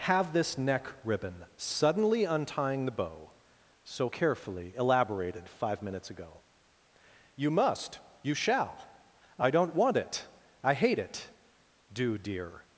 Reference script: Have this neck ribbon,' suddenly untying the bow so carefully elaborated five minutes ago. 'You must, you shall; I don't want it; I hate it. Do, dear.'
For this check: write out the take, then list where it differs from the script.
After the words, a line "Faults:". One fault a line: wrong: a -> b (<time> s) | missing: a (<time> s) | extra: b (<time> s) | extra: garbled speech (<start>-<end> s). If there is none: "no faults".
Have this neck ribbon,' suddenly untying the bow so carefully elaborated five minutes ago. 'You must, you shall; I don't want it; I hate it. Do, dear.'
Faults:
no faults